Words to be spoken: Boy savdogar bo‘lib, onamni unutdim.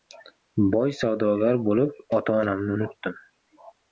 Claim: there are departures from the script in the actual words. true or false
true